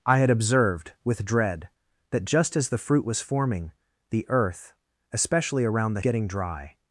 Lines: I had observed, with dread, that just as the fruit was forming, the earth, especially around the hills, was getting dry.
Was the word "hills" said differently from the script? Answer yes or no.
yes